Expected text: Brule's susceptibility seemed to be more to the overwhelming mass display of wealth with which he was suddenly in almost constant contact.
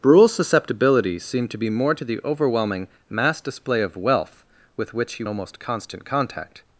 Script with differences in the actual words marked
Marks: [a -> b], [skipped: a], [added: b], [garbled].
Brule's susceptibility seemed to be more to the overwhelming mass display of wealth with which he [skipped: was suddenly in] almost constant contact.